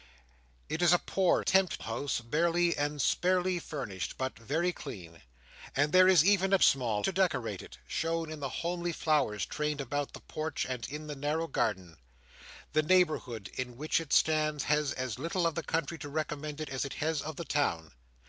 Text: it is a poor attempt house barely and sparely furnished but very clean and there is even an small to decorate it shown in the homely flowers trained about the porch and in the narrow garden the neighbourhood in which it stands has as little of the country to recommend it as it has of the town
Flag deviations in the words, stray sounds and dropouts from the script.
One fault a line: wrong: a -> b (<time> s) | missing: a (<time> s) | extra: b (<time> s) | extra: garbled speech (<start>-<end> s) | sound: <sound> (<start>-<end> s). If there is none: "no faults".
no faults